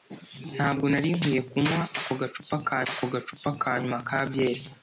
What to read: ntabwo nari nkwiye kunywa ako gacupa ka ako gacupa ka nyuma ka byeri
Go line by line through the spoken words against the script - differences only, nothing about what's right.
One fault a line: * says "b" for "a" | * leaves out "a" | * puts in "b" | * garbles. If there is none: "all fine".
all fine